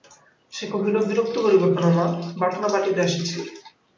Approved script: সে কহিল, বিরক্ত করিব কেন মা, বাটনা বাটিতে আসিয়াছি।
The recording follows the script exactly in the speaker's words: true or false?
true